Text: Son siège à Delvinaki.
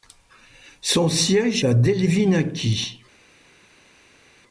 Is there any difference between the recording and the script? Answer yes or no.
no